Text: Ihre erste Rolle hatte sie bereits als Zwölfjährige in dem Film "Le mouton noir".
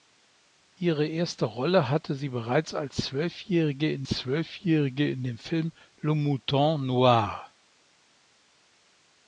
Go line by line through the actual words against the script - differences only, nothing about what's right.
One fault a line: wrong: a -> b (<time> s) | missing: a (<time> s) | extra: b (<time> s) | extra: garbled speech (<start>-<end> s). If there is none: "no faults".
extra: Zwölfjährige in (4.1 s)